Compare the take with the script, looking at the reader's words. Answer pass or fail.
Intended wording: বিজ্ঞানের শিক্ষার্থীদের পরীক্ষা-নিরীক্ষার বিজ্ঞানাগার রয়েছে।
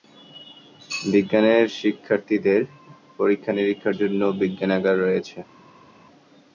fail